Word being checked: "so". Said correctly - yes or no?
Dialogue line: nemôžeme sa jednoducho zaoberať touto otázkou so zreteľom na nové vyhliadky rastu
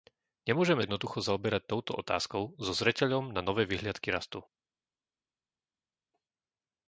yes